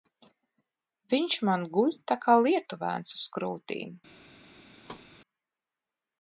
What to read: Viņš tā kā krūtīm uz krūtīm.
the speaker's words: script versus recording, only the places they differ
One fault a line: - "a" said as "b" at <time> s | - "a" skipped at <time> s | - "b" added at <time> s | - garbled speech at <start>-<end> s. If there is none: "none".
- "man guļ" added at 1.5 s
- "krūtīm" said as "lietuvēns" at 2.5 s